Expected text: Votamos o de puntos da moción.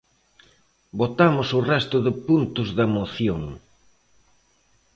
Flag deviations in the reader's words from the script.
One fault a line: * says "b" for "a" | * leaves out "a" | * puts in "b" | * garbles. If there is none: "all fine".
* puts in "resto"